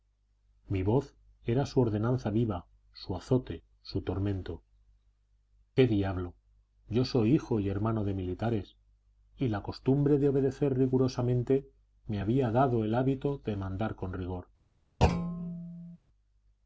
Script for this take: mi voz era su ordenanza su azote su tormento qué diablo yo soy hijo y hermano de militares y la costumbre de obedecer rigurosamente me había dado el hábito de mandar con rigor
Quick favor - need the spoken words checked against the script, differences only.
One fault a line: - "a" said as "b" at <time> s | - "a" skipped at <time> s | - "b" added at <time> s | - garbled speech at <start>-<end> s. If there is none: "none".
- "viva" added at 2.3 s